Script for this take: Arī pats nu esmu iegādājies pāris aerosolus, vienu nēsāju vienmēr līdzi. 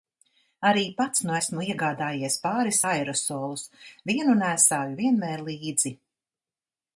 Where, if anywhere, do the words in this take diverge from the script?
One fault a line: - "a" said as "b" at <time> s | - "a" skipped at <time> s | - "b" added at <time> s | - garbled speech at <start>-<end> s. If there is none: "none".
none